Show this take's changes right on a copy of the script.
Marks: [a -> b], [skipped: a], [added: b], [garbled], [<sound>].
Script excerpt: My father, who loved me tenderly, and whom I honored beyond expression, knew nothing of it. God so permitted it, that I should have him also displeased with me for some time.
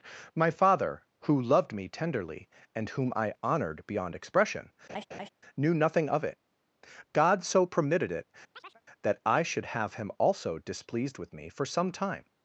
My father, who loved me tenderly, and whom I honored beyond expression, [laugh] knew nothing of it. God so permitted it, [chirp] that I should have him also displeased with me for some time.